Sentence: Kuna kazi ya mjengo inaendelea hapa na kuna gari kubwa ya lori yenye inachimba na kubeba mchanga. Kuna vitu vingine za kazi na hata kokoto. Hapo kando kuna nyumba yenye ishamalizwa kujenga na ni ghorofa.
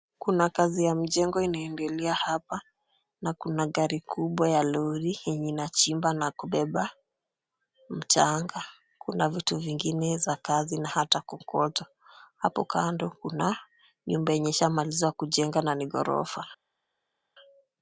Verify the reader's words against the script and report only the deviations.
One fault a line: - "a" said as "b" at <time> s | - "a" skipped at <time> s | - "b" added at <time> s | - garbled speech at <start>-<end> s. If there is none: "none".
none